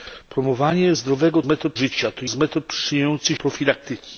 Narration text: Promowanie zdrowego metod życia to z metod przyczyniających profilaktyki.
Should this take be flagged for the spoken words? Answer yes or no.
no